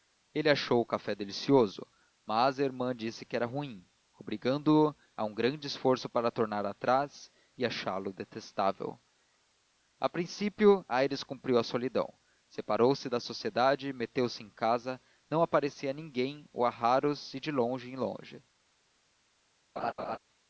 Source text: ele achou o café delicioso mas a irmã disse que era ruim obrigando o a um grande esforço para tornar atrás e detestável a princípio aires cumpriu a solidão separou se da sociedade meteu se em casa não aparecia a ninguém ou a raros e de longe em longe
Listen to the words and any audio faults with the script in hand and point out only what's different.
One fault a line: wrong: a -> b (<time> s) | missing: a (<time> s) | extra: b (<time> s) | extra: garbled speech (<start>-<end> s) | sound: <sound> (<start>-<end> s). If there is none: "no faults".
extra: achá lo (7.7 s)
sound: laugh (19.8-20.2 s)